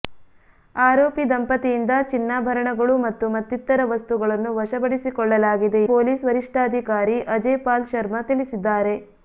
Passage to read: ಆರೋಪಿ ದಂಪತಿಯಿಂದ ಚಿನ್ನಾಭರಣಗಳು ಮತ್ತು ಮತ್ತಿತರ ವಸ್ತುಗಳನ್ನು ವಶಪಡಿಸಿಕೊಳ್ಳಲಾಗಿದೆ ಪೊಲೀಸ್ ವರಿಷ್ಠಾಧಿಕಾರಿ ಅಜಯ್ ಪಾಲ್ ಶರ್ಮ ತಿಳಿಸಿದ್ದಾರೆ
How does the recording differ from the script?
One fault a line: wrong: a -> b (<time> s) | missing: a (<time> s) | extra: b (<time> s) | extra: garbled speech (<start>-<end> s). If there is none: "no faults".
no faults